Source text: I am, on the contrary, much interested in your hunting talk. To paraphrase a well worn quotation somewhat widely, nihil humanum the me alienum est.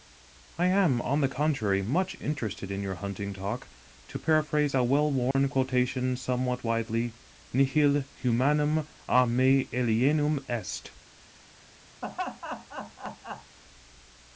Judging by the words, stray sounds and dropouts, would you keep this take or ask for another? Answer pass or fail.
fail